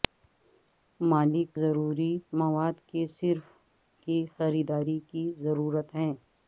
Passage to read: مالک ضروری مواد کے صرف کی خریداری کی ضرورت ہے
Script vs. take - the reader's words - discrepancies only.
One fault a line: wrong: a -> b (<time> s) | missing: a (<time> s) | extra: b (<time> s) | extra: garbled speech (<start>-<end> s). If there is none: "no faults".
no faults